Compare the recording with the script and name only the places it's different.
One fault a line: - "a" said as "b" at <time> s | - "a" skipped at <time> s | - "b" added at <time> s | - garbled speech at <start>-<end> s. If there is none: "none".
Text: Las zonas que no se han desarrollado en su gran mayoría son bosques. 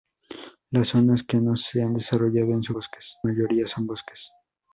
- "gran" said as "bosques" at 2.7 s